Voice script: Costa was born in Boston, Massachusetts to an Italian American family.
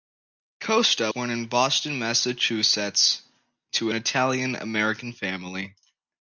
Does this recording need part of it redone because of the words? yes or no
yes